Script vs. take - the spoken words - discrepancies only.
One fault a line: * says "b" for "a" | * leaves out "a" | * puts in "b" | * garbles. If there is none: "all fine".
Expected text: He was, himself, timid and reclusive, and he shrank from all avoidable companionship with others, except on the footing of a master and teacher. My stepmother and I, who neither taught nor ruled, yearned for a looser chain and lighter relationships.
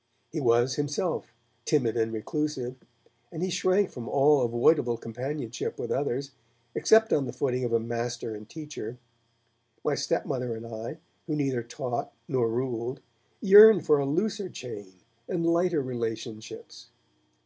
all fine